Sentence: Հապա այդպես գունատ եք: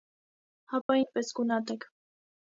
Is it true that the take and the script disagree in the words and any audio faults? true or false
true